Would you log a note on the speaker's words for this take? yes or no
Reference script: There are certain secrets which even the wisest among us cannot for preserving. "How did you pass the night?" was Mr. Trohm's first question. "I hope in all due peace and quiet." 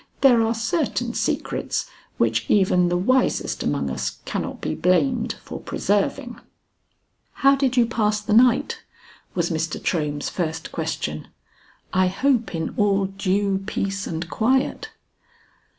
yes